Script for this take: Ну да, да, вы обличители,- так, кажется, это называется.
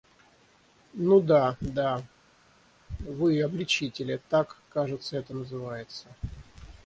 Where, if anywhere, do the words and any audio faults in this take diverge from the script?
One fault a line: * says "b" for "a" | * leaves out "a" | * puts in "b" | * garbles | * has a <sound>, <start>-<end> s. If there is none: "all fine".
all fine